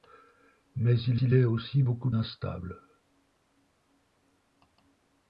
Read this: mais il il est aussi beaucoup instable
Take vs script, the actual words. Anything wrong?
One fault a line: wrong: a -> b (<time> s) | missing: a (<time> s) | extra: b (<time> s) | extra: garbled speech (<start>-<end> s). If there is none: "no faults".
no faults